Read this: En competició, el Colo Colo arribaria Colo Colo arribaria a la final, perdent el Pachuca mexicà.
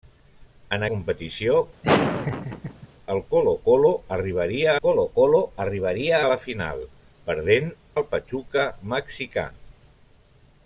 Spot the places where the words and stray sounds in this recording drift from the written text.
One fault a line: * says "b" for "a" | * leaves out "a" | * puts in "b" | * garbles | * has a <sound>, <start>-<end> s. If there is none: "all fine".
* has a laugh, 1.8-2.9 s